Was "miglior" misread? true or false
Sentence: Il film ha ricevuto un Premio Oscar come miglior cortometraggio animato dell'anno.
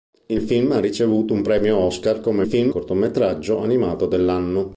true